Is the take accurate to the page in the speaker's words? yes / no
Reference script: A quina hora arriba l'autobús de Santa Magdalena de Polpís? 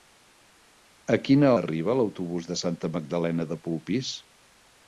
no